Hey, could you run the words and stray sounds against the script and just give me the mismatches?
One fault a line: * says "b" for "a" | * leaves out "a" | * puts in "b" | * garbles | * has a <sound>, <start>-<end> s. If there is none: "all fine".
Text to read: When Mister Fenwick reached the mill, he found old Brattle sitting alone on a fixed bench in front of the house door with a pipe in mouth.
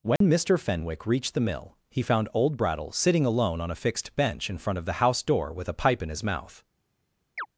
* has a dropout, 0.2-0.2 s
* puts in "his"
* has a chirp, 7.4-7.5 s